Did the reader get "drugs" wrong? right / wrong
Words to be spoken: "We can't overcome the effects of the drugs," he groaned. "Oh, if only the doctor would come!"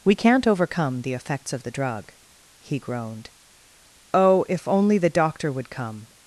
wrong